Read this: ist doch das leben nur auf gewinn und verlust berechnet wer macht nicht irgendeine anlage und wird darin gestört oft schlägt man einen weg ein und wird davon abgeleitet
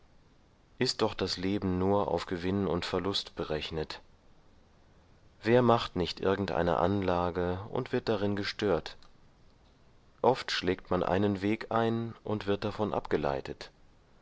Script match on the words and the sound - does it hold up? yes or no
yes